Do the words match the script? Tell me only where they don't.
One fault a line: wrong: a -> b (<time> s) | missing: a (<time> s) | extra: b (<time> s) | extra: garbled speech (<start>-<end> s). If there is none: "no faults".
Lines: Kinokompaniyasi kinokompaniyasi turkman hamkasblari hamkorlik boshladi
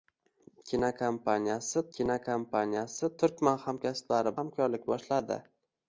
no faults